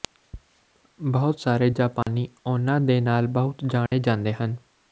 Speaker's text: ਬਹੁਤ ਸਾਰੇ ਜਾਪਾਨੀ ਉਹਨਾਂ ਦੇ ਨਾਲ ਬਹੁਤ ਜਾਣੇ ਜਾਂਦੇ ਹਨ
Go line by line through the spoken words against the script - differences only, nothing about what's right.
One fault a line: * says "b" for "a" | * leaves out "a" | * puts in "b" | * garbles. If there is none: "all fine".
all fine